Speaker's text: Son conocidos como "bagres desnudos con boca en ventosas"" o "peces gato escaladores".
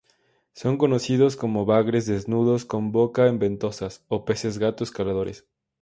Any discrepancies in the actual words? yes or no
no